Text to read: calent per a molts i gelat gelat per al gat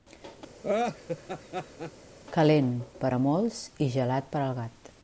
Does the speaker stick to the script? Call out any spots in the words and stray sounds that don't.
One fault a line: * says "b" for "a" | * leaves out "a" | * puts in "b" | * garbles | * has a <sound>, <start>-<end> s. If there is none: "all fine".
* has a laugh, 0.6-1.9 s
* leaves out "gelat"